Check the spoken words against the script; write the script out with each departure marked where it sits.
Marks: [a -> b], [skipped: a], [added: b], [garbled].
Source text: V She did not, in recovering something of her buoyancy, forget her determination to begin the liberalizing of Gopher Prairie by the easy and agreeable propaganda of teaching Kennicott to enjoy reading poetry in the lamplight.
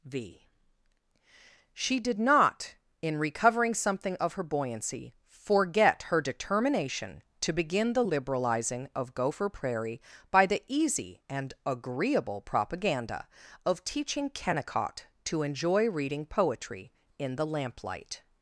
V She did not, in recovering something of her buoyancy, forget her determination to begin the liberalizing of Gopher Prairie by the easy and agreeable propaganda of teaching Kennicott to enjoy reading poetry in the lamplight.